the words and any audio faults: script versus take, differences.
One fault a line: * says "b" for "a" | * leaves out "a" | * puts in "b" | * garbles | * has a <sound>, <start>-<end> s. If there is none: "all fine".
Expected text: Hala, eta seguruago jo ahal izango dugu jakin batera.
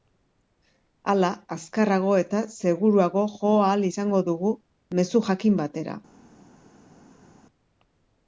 * puts in "azkarrago"
* puts in "mezu"